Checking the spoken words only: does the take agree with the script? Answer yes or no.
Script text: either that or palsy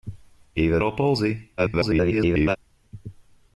no